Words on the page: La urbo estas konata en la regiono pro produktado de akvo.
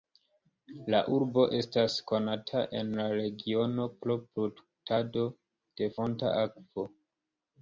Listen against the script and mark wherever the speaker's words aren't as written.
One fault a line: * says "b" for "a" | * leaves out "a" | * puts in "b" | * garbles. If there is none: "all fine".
* puts in "fonta"